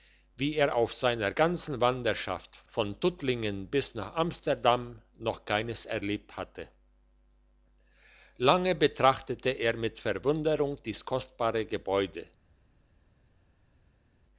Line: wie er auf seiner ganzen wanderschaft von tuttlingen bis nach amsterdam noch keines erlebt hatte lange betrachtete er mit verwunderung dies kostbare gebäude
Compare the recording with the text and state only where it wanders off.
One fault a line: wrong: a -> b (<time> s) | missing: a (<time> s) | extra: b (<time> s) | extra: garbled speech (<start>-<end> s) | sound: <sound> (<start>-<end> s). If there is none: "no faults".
no faults